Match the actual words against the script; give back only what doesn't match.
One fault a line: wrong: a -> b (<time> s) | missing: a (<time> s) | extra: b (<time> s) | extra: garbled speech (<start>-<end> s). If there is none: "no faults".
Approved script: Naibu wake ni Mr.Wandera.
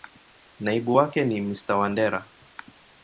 no faults